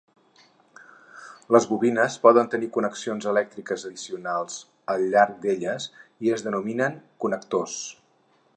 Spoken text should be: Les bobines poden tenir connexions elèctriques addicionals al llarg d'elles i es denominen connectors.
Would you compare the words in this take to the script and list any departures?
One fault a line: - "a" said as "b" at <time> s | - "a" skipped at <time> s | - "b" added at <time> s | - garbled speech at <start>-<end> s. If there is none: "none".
none